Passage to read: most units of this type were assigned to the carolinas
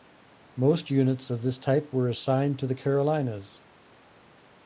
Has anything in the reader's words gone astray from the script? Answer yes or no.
no